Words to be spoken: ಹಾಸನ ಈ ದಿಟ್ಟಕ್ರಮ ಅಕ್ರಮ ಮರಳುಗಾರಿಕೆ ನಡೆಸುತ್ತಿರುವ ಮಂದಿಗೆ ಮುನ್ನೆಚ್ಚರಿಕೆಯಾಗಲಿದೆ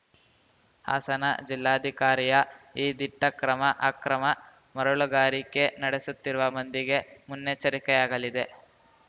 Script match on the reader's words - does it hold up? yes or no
no